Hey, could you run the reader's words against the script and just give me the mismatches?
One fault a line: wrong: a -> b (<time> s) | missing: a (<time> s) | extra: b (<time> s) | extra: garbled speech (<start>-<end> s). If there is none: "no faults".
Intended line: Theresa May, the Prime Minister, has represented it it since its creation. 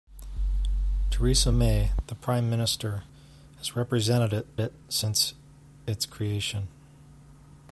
no faults